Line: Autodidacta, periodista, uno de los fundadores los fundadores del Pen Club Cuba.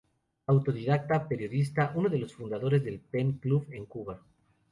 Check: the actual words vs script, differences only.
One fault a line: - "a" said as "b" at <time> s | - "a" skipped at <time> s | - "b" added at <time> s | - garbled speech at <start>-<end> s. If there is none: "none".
- "los fundadores" skipped at 2.8 s
- "en" added at 3.7 s